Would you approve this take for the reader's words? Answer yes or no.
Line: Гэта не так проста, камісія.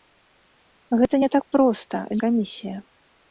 yes